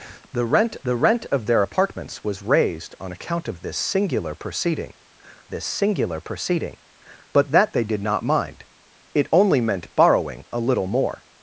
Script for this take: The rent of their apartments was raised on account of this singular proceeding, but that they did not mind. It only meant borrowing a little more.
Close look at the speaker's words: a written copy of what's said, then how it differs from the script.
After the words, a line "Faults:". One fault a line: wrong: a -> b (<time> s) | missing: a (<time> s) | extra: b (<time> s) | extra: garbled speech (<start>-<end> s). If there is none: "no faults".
The rent the rent of their apartments was raised on account of this singular proceeding this singular proceeding, but that they did not mind. It only meant borrowing a little more.
Faults:
extra: the rent (0.8 s)
extra: this singular proceeding (5.5 s)